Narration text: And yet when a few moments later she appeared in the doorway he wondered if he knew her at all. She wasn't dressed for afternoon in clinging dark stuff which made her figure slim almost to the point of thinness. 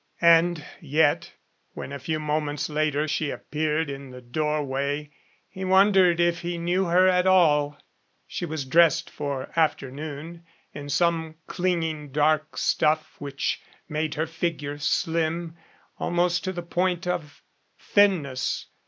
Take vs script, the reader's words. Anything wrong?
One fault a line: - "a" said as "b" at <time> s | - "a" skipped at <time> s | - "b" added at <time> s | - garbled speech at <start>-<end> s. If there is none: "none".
- "wasn't" said as "was" at 8.4 s
- "some" added at 10.9 s